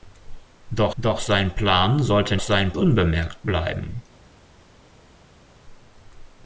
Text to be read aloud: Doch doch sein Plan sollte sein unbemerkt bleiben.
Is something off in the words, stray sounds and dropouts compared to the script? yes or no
no